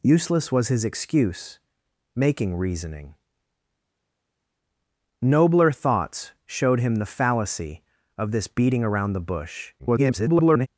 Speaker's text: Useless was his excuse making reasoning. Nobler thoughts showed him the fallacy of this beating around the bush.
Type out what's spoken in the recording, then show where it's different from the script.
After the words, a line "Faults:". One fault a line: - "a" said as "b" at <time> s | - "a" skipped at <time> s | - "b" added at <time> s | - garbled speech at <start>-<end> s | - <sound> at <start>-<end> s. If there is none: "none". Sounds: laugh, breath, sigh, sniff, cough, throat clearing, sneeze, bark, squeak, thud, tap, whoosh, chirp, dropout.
Useless was his excuse making reasoning. Nobler thoughts showed him the fallacy of this beating around the bush. [garbled]
Faults:
- garbled speech at 9.8-10.7 s